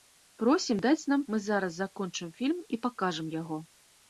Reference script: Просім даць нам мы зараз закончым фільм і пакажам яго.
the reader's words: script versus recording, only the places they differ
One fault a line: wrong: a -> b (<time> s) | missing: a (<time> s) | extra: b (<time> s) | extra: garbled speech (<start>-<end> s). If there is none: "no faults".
no faults